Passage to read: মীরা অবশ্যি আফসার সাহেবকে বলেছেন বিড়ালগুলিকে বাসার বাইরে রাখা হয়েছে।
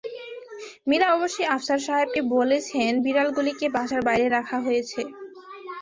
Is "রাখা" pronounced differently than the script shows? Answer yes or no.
no